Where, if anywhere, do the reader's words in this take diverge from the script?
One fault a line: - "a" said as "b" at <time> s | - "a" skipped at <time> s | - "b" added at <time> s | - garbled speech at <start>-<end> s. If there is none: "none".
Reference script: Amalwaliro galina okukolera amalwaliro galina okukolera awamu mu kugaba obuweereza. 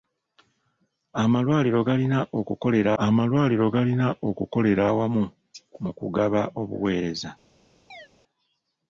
none